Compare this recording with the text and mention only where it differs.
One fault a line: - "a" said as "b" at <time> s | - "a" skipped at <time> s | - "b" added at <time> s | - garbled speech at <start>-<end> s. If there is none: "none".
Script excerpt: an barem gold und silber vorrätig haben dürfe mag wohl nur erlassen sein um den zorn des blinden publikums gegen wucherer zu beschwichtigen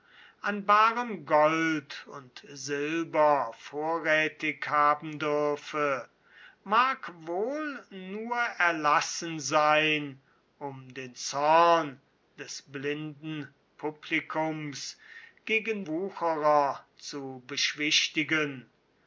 none